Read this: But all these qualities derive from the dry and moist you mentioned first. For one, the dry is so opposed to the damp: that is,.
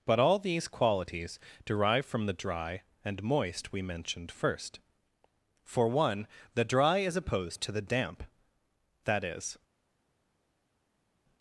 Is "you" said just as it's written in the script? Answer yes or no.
no